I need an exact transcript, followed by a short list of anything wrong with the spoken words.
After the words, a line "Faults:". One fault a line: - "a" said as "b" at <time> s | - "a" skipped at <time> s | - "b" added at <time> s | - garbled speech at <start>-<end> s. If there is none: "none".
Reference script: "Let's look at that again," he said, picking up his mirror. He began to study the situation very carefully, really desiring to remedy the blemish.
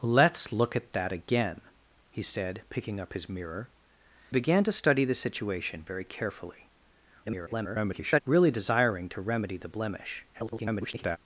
"Let's look at that again," he said, picking up his mirror. Began to study the situation very carefully, [garbled] really desiring to remedy the blemish. [garbled]
Faults:
- "He" skipped at 3.7 s
- garbled speech at 7.2-8.2 s
- garbled speech at 10.3-11.2 s